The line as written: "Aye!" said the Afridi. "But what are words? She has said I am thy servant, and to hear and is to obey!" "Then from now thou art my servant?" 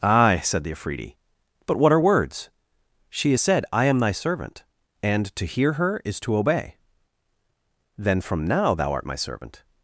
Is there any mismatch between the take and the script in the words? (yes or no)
yes